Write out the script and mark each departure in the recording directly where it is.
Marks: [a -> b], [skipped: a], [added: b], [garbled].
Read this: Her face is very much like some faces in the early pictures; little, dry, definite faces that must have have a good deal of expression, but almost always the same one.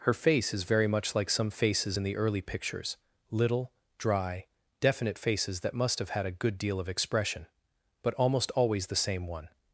Her face is very much like some faces in the early pictures; little, dry, definite faces that must have [have -> had] a good deal of expression, but almost always the same one.